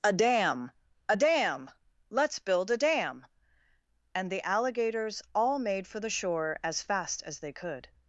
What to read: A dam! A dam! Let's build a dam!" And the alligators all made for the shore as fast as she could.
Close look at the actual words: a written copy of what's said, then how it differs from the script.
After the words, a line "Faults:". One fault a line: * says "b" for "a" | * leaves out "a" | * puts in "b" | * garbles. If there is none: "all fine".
A dam! A dam! Let's build a dam!" And the alligators all made for the shore as fast as they could.
Faults:
* says "they" for "she"